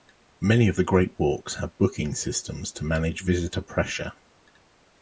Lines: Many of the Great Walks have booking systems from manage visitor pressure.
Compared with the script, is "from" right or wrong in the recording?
wrong